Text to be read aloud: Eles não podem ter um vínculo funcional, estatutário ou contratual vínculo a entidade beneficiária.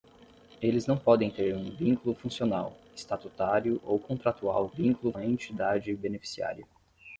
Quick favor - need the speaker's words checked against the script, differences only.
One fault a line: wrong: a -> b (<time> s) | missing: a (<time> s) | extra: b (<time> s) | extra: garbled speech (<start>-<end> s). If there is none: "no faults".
no faults